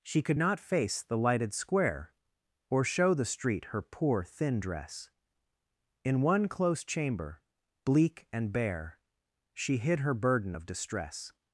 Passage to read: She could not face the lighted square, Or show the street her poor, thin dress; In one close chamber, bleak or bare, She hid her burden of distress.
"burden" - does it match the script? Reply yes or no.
yes